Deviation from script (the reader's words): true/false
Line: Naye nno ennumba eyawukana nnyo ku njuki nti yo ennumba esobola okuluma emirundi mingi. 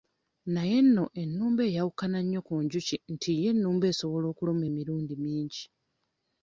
false